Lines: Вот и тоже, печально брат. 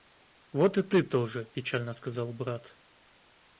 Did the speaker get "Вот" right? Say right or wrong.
right